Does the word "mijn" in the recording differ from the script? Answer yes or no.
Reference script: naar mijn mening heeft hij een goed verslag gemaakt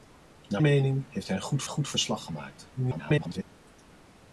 yes